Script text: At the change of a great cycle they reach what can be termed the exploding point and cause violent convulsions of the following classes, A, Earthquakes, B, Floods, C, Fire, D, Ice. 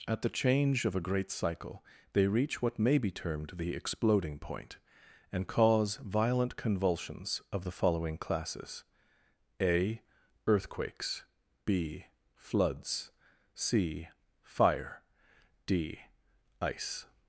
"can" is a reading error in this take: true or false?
true